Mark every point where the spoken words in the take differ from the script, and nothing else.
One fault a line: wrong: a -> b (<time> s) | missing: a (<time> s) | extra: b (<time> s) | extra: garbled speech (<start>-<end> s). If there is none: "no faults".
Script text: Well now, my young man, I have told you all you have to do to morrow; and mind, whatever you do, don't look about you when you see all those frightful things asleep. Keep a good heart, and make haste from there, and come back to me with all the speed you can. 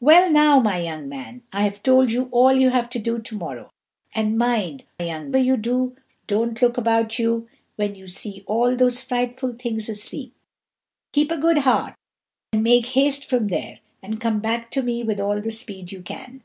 wrong: whatever -> young (5.0 s)